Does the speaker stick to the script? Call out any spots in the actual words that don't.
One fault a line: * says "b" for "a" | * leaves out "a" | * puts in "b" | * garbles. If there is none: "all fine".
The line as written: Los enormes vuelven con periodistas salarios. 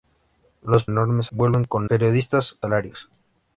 all fine